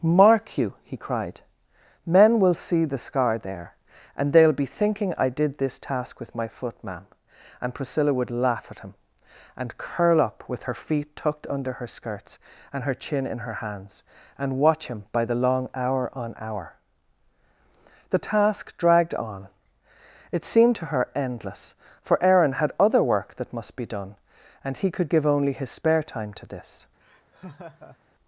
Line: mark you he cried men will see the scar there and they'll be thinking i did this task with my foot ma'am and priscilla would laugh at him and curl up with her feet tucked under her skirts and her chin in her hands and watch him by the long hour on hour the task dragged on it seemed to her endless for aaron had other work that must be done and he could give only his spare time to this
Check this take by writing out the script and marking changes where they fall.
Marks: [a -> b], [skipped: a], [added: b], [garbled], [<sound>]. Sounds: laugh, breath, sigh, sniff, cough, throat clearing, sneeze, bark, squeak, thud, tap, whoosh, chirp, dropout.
mark you he cried men will see the scar there and they'll be thinking i did this task with my foot ma'am and priscilla would laugh at him and curl up with her feet tucked under her skirts and her chin in her hands and watch him by the long hour on hour the task dragged on it seemed to her endless for aaron had other work that must be done and he could give only his spare time to this [laugh]